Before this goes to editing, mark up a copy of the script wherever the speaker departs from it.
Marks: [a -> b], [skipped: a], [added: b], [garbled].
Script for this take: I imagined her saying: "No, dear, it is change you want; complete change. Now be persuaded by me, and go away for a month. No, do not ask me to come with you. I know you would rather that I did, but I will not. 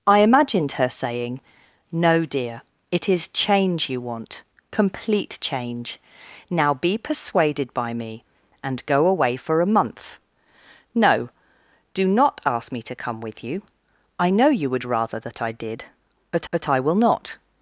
I imagined her saying: "No, dear, it is change you want; complete change. Now be persuaded by me, and go away for a month. No, do not ask me to come with you. I know you would rather that I did, but [added: but] I will not.